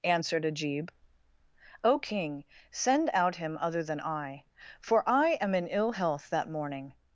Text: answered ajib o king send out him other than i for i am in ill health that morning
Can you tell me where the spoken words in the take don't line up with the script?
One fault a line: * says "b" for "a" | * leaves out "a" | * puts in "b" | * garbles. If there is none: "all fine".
all fine